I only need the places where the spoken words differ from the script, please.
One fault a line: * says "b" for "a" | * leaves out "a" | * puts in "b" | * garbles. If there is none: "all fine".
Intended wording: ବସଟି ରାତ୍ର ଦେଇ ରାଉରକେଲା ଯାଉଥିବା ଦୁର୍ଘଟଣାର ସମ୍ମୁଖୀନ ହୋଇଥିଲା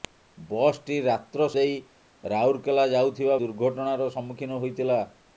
all fine